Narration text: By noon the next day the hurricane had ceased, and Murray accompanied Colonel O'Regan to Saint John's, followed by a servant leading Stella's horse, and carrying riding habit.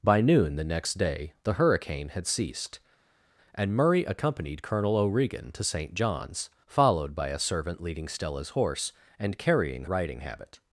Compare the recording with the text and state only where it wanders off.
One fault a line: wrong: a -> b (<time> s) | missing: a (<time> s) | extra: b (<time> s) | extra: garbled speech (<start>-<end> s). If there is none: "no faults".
no faults